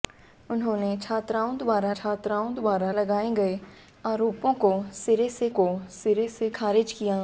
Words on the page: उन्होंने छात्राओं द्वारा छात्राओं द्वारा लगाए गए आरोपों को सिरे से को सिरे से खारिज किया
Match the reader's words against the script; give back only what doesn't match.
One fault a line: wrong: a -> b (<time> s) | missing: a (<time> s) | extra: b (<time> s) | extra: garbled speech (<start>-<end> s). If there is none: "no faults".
no faults